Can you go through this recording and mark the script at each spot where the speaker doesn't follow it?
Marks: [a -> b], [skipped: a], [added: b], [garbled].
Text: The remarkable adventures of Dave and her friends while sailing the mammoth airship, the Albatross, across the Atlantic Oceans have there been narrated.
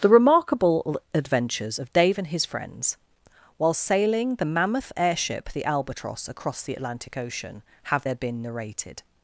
The remarkable adventures of Dave and [her -> his] friends while sailing the mammoth airship, the Albatross, across the Atlantic [Oceans -> Ocean] have there been narrated.